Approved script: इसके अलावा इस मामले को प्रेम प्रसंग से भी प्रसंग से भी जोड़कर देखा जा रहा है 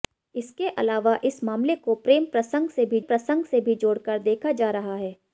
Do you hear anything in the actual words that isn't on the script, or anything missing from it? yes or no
no